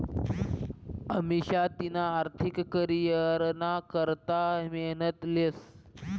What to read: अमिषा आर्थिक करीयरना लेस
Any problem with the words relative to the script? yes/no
yes